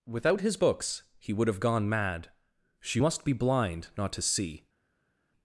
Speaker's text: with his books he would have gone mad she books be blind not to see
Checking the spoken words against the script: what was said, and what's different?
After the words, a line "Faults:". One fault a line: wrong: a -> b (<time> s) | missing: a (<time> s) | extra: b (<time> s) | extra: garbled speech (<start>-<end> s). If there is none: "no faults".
without his books he would have gone mad she must be blind not to see
Faults:
wrong: with -> without (0.1 s)
wrong: books -> must (3.0 s)